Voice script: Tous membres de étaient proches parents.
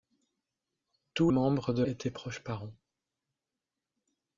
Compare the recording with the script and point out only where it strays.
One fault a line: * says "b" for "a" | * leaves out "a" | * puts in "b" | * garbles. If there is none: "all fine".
all fine